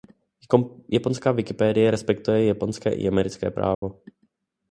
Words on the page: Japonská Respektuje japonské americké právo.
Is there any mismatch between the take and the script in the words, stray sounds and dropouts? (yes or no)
yes